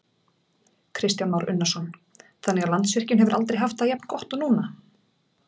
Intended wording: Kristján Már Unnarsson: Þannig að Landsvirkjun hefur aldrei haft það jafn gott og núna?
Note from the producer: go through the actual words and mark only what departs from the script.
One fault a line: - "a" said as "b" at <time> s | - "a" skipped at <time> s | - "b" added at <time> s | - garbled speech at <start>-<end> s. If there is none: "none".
none